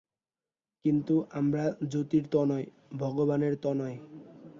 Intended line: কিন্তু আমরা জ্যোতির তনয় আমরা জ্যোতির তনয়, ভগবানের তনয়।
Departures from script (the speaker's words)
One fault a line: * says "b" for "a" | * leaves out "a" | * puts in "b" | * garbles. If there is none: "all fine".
* leaves out "আমরা জ্যোতির তনয়"